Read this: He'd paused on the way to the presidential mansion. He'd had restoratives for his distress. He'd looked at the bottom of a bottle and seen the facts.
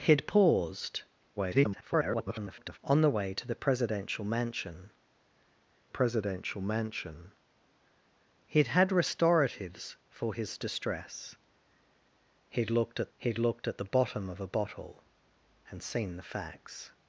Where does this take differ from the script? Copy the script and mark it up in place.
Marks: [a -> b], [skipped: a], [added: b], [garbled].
He'd paused [garbled] on the way to the presidential mansion. [added: presidential mansion] He'd had restoratives for his distress. He'd looked at [added: he'd looked at] the bottom of a bottle and seen the facts.